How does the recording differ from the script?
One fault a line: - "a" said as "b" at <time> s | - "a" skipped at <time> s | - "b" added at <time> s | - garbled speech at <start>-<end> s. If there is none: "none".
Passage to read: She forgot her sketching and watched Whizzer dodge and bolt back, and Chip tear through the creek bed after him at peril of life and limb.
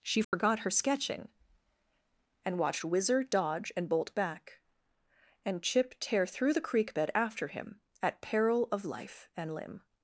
none